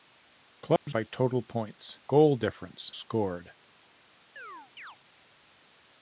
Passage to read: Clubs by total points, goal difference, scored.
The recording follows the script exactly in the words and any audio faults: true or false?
false